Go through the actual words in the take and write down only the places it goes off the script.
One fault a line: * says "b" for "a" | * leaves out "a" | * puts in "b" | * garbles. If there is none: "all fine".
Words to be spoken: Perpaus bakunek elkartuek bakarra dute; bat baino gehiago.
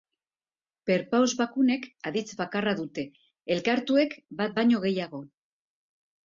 * says "aditz" for "elkartuek"
* puts in "elkartuek"